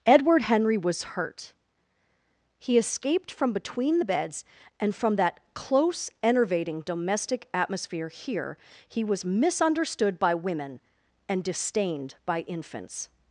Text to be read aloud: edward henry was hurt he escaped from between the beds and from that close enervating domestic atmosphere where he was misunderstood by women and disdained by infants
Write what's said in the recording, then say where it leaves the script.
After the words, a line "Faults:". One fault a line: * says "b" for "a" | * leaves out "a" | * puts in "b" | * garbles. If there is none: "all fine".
edward henry was hurt he escaped from between the beds and from that close enervating domestic atmosphere here he was misunderstood by women and disdained by infants
Faults:
* says "here" for "where"